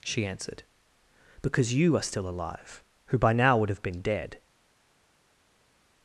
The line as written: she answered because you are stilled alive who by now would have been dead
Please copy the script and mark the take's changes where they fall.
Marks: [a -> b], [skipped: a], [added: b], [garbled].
she answered because you are [stilled -> still] alive who by now would have been dead